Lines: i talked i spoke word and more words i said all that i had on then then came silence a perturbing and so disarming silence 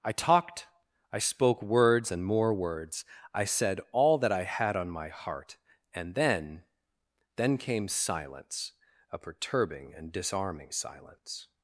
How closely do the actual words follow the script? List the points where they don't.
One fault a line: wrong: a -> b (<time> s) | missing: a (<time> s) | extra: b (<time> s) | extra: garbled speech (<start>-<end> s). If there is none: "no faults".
wrong: word -> words (1.6 s)
extra: my heart and (4.9 s)
missing: so (10.1 s)